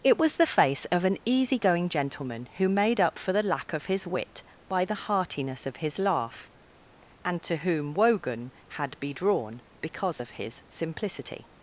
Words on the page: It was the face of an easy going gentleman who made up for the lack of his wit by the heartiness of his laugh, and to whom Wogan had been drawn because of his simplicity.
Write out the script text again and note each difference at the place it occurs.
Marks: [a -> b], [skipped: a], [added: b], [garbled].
It was the face of an easy going gentleman who made up for the lack of his wit by the heartiness of his laugh, and to whom Wogan had [been -> be] drawn because of his simplicity.